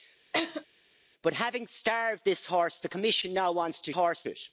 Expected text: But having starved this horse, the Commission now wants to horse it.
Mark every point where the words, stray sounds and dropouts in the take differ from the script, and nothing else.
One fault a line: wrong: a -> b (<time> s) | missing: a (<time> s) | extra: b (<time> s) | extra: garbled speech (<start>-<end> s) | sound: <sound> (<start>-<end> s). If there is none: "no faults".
sound: laugh (0.3-0.7 s)